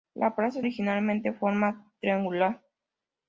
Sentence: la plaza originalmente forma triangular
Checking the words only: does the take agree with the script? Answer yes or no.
yes